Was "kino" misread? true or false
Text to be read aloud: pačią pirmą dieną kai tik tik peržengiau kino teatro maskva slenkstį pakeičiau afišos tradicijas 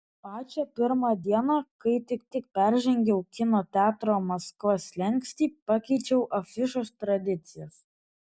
false